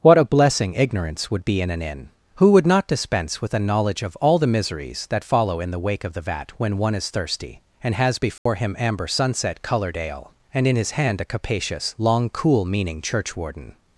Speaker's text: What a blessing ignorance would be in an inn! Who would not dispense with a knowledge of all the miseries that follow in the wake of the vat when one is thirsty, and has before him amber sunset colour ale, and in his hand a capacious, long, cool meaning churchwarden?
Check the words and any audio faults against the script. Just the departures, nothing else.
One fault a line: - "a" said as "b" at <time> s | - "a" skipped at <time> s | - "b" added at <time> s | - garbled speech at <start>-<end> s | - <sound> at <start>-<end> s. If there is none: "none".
- dropout at 8.4-8.5 s
- "colour" said as "coloured" at 9.6 s